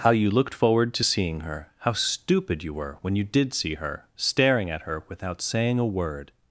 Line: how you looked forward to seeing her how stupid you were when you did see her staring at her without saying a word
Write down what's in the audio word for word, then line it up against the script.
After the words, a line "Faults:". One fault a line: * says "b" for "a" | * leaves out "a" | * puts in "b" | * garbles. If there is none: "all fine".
how you looked forward to seeing her how stupid you were when you did see her staring at her without saying a word
Faults:
all fine